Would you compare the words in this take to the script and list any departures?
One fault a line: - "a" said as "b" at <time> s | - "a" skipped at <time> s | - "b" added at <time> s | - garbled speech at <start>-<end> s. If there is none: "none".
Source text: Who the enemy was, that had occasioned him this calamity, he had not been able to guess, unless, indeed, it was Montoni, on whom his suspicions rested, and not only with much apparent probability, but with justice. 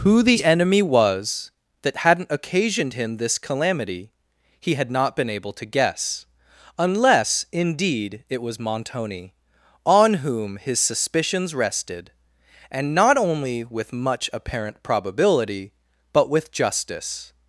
- "had" said as "hadn't" at 2.0 s